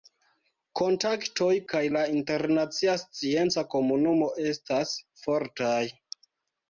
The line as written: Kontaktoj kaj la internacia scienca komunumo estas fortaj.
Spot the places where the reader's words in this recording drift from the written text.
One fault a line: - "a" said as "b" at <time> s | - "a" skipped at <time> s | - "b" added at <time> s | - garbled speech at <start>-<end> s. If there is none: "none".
none